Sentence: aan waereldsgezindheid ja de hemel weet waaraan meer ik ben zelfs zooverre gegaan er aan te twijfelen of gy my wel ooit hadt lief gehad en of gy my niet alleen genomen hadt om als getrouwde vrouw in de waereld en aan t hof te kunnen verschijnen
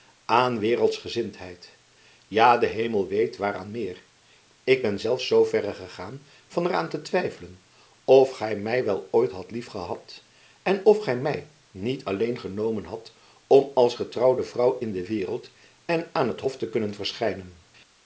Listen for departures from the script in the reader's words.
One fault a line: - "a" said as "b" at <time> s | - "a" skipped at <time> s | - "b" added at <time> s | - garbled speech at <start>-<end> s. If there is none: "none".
- "van" added at 6.5 s